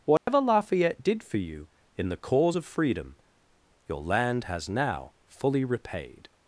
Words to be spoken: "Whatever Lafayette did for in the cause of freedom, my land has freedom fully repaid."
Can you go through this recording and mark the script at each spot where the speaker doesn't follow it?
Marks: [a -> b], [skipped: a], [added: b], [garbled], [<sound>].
"Whatever [dropout] Lafayette did for [added: you] in the cause of freedom, [my -> your] land has [freedom -> now] fully repaid."